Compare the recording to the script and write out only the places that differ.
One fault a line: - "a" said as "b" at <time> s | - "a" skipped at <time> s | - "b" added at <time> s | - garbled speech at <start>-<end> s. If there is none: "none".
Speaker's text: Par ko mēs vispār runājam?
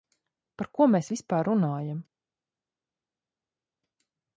none